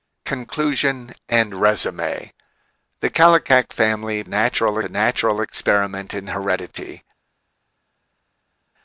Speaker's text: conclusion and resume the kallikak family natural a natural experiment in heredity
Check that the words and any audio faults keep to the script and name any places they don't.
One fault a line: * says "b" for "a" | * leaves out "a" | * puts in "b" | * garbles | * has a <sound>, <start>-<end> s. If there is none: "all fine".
all fine